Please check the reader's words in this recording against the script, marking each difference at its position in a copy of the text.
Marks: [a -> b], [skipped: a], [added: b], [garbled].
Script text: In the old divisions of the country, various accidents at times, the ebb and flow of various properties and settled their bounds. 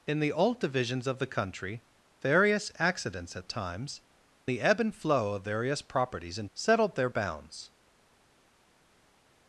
In the old divisions of the country, various accidents at times, the ebb and flow of various properties and settled their bounds.